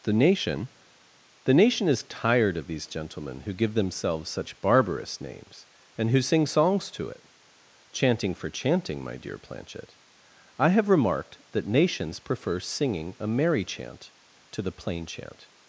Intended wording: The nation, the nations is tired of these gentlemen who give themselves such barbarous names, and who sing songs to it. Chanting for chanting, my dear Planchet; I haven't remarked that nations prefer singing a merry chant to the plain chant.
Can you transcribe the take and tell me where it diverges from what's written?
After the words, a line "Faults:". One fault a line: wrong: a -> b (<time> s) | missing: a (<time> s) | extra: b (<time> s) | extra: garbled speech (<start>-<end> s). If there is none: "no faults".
The nation, the nation is tired of these gentlemen who give themselves such barbarous names, and who sing songs to it. Chanting for chanting, my dear Planchet; I have remarked that nations prefer singing a merry chant to the plain chant.
Faults:
wrong: nations -> nation (1.5 s)
wrong: haven't -> have (10.7 s)